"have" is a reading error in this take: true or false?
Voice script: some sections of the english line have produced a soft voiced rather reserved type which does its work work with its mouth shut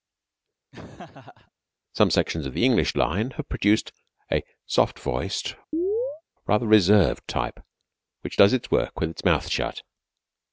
false